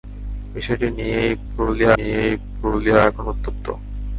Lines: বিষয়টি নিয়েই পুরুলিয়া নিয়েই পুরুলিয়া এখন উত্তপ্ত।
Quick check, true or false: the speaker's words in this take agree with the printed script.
true